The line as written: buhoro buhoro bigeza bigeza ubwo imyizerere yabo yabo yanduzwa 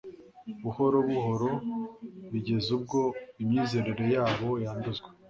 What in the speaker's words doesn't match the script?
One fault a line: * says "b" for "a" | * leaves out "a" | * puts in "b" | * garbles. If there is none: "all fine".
* leaves out "bigeza"
* leaves out "yabo"